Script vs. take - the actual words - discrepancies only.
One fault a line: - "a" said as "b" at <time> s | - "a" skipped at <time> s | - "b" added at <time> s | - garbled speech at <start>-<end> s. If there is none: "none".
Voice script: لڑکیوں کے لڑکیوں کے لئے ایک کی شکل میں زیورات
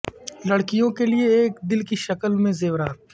- "لڑکیوں کے" skipped at 1.1 s
- "دل" added at 1.7 s